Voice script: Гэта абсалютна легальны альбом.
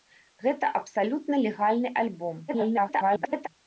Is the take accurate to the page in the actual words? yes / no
no